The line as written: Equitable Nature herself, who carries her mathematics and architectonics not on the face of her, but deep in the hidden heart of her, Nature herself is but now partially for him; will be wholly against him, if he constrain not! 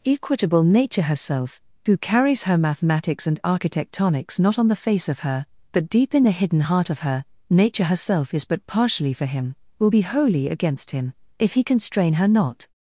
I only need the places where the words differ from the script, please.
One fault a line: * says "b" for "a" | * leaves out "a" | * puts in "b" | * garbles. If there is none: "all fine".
* leaves out "now"
* puts in "her"